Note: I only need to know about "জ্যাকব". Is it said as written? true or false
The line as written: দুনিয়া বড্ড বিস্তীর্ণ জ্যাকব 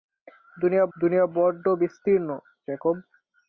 true